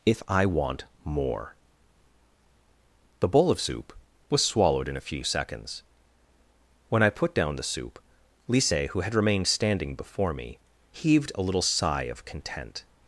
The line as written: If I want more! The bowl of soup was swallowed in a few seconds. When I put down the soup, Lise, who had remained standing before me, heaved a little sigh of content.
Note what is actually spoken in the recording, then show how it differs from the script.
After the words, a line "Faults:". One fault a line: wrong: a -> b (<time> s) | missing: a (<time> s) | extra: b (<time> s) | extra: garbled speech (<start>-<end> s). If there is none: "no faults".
If I want more! The bowl of soup was swallowed in a few seconds. When I put down the soup, Lise, who had remained standing before me, heaved a little sigh of content.
Faults:
no faults